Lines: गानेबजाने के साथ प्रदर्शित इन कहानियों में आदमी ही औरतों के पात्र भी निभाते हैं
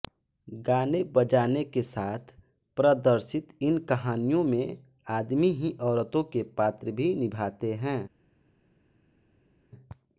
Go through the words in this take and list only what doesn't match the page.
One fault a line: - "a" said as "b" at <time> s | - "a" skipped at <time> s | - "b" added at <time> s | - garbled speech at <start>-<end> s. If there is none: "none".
none